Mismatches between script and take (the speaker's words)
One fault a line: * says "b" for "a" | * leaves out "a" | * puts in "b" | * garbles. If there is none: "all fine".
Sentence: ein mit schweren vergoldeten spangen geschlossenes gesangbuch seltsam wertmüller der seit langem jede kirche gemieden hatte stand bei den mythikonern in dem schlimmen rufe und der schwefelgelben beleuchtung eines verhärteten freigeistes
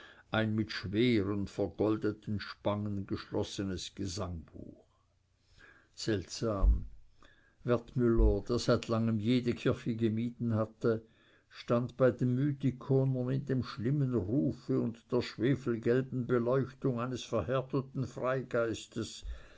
all fine